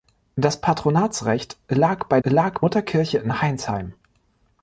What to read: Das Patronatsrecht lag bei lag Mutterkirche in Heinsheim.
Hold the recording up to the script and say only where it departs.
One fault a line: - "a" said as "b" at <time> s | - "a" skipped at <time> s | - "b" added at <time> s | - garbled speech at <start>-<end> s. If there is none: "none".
none